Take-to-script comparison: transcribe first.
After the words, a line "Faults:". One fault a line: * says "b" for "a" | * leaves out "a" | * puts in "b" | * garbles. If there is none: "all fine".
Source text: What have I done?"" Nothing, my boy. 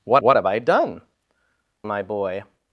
What what have I done?"" My boy.
Faults:
* puts in "what"
* leaves out "Nothing"